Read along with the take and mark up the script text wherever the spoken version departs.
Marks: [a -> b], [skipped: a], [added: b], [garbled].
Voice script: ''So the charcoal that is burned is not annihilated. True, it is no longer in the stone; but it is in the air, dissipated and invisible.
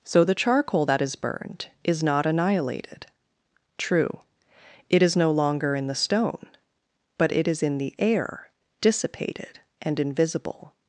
''So the charcoal that is burned is not annihilated. True, it is no longer in the stone; but it is in the air, dissipated and invisible.